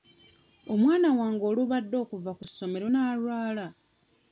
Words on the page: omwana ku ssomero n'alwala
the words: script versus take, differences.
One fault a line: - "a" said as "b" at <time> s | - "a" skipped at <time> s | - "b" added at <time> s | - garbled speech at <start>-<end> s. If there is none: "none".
- "wange olubadde okuva" added at 1.2 s